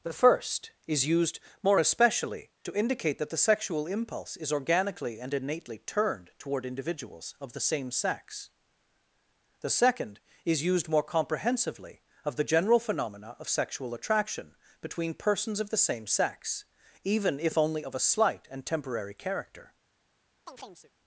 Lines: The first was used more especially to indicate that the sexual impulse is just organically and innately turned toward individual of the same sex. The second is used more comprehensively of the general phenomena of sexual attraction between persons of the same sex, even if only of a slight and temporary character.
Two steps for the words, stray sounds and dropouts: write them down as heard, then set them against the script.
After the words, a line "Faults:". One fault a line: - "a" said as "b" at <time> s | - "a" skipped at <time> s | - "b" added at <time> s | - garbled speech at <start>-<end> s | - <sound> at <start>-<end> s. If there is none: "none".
The first is used more especially to indicate that the sexual impulse is organically and innately turned toward individuals of the same sex. The second is used more comprehensively of the general phenomena of sexual attraction between persons of the same sex, even if only of a slight and temporary character.
Faults:
- "was" said as "is" at 0.9 s
- "just" skipped at 4.5 s
- "individual" said as "individuals" at 6.6 s
- chirp at 20.5-20.9 s